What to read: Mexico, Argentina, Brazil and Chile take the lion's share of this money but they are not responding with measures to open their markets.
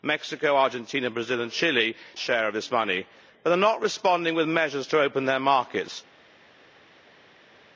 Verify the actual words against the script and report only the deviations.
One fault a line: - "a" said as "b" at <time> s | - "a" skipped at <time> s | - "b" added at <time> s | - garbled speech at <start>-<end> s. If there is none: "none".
- "take the lion's" skipped at 1.9 s